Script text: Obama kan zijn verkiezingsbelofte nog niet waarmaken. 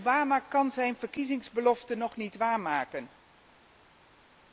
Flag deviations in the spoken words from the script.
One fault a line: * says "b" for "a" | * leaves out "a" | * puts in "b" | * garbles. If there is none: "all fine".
all fine